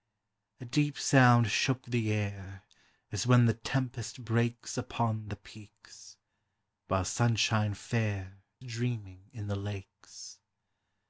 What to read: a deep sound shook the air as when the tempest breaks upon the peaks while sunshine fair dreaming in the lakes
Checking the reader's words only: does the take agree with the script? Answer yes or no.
yes